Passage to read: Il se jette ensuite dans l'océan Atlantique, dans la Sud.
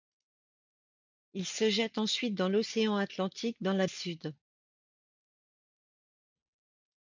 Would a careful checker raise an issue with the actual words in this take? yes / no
no